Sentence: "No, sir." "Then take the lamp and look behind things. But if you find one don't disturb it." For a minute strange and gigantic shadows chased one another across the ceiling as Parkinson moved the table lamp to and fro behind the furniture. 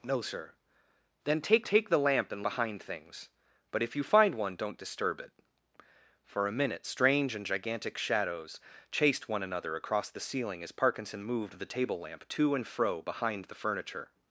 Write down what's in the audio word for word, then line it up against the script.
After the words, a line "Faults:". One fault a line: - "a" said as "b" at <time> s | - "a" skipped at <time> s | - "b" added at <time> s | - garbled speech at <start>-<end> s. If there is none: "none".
"No, sir." "Then take take the lamp and behind things. But if you find one don't disturb it." For a minute strange and gigantic shadows chased one another across the ceiling as Parkinson moved the table lamp to and fro behind the furniture.
Faults:
- "take" added at 1.6 s
- "look" skipped at 2.5 s